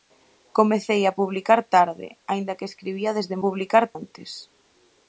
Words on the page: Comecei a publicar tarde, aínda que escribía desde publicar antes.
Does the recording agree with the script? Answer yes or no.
yes